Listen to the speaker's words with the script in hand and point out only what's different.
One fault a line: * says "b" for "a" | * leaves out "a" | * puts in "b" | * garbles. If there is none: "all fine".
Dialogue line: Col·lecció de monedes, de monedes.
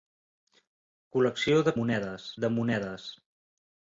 all fine